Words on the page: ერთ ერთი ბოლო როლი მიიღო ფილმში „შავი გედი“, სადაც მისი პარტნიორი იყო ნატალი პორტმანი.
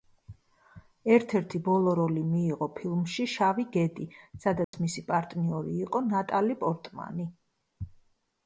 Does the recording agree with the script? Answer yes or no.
yes